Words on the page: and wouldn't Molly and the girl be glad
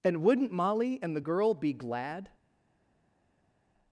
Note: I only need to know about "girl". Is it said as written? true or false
true